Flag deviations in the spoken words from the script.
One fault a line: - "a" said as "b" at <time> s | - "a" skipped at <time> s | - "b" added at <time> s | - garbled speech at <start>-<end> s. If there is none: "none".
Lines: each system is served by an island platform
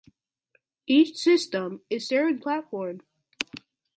- "by an island" skipped at 2.4 s